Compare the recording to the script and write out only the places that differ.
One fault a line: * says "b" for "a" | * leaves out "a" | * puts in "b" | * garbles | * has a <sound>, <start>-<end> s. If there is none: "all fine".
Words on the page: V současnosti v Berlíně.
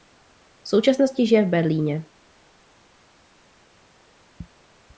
* puts in "žije"